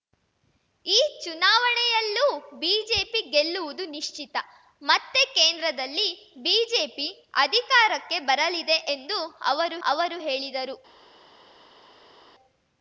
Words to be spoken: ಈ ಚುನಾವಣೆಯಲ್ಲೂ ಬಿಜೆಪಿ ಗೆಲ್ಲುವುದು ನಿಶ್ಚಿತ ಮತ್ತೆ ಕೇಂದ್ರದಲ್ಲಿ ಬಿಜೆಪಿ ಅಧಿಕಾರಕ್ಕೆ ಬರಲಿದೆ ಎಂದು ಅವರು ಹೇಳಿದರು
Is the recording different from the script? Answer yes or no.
yes